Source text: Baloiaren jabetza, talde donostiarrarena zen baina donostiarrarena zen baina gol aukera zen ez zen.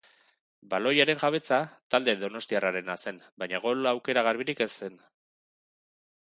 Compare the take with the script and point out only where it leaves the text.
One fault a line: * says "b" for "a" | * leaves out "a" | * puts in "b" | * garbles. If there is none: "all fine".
* leaves out "donostiarrarena zen baina"
* says "garbirik" for "zen"